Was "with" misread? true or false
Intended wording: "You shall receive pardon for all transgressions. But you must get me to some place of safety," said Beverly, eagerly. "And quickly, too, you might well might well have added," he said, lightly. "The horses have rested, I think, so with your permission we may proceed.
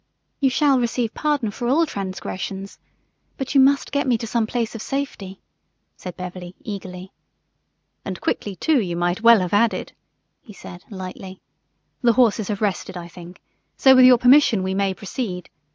false